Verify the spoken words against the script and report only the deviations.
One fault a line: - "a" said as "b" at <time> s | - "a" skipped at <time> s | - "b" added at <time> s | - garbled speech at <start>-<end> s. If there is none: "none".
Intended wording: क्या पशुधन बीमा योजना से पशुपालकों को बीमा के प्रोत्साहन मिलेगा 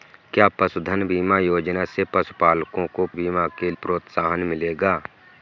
none